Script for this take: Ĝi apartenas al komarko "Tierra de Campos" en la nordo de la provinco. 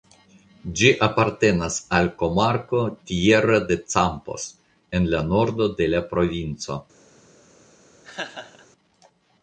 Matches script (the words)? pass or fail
pass